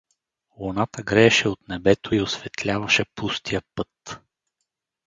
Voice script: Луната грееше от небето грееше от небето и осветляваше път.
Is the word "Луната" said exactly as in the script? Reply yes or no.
yes